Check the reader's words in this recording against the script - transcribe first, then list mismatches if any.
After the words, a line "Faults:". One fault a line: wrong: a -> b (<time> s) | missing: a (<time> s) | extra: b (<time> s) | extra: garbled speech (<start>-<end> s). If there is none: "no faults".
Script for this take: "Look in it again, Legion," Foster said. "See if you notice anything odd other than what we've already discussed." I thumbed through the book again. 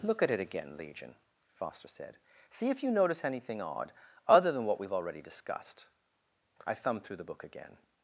"Look at it again, Legion," Foster said. "See if you notice anything odd other than what we've already discussed." I thumbed through the book again.
Faults:
wrong: in -> at (0.2 s)